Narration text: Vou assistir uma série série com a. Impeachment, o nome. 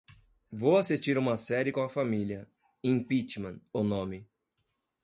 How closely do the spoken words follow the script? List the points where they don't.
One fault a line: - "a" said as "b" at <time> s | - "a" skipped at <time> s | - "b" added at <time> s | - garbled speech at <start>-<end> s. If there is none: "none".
- "série" skipped at 1.7 s
- "família" added at 1.9 s